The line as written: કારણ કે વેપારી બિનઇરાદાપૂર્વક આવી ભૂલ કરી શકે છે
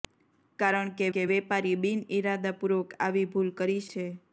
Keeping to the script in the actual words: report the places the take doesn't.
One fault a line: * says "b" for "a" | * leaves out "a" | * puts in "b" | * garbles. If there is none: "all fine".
* puts in "કે"
* leaves out "શકે"